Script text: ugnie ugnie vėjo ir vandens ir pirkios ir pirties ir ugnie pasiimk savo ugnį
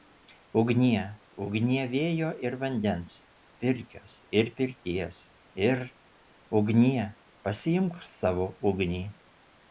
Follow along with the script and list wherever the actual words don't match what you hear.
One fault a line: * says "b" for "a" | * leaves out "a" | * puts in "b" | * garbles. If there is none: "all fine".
* leaves out "ir"